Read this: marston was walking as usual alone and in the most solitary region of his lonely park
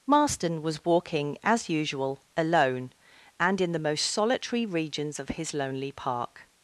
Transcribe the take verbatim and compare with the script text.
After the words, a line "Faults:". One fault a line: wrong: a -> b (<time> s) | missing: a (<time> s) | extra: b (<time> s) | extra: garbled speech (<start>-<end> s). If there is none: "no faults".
marston was walking as usual alone and in the most solitary regions of his lonely park
Faults:
wrong: region -> regions (4.7 s)